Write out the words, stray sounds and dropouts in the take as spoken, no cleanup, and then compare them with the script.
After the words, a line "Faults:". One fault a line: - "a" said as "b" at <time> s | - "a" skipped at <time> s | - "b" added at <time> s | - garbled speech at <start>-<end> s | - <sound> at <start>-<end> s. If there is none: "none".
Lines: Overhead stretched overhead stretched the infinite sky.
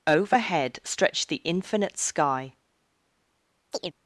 Overhead stretched the infinite sky.
Faults:
- "overhead stretched" skipped at 1.3 s
- chirp at 3.7-3.9 s